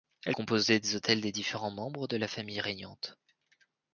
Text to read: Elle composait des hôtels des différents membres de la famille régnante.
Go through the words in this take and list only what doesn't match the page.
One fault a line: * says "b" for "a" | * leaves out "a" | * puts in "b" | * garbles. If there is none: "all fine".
all fine